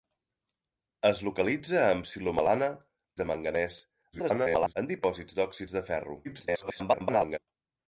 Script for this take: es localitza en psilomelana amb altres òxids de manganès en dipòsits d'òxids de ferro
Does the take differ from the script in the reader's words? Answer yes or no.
yes